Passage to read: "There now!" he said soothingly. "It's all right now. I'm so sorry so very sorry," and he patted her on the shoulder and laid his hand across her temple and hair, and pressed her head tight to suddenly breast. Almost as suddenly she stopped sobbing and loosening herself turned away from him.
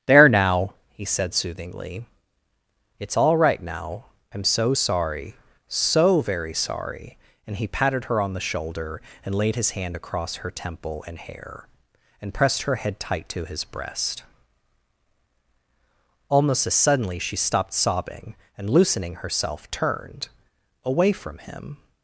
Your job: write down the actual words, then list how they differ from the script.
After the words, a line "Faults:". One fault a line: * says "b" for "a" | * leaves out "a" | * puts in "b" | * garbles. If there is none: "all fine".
"There now!" he said soothingly. "It's all right now. I'm so sorry so very sorry," and he patted her on the shoulder and laid his hand across her temple and hair, and pressed her head tight to his breast. Almost as suddenly she stopped sobbing and loosening herself turned away from him.
Faults:
* says "his" for "suddenly"